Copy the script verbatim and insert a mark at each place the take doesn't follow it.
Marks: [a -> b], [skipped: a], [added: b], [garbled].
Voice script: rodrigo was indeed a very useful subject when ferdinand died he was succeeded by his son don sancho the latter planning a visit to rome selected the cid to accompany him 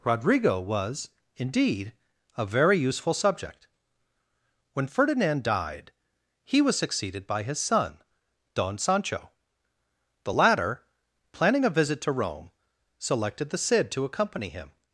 rodrigo was indeed a very useful subject when ferdinand died he was succeeded by his son don sancho the latter planning a visit to rome selected the cid to accompany him